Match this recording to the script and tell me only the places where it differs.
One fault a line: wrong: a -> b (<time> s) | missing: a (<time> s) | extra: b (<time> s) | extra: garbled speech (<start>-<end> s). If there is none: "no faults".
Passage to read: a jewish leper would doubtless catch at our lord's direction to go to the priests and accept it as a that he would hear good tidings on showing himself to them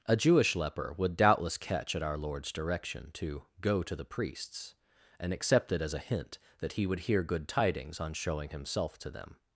extra: hint (6.0 s)